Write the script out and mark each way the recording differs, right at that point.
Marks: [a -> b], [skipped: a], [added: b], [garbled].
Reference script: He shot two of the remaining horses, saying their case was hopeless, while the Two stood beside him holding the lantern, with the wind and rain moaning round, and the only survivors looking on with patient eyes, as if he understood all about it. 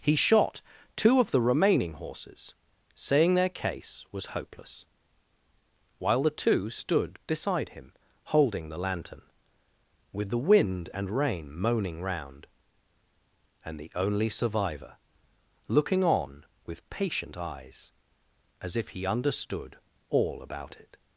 He shot two of the remaining horses, saying their case was hopeless, while the Two stood beside him holding the lantern, with the wind and rain moaning round, and the only [survivors -> survivor] looking on with patient eyes, as if he understood all about it.